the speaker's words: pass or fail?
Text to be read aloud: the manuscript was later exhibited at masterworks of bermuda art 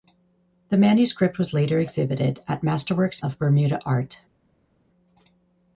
pass